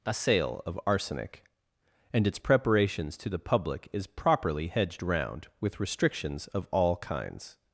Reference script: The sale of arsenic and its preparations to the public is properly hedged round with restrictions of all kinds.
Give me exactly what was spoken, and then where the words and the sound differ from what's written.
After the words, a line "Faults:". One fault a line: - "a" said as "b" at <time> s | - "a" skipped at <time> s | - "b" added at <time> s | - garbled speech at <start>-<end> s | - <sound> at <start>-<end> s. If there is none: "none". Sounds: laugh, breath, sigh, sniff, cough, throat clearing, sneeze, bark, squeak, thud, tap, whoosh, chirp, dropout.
A sale of arsenic and its preparations to the public is properly hedged round with restrictions of all kinds.
Faults:
- "The" said as "A" at 0.0 s